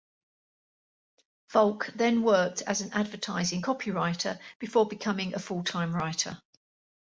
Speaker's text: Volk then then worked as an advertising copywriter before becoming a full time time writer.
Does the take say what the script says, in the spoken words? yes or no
no